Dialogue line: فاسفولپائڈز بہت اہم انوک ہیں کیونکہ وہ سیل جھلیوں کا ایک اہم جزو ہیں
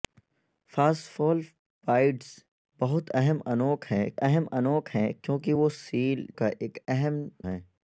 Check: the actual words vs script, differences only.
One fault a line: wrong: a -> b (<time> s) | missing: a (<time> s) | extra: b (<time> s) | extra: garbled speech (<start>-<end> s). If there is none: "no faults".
extra: اہم انوک ہیں (4.2 s)
missing: جھلیوں (6.3 s)
missing: جزو (7.2 s)